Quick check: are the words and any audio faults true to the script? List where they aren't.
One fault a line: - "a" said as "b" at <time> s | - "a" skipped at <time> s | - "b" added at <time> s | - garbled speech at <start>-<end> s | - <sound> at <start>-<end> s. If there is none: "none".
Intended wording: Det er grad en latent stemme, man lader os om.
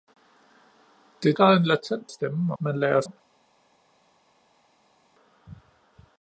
none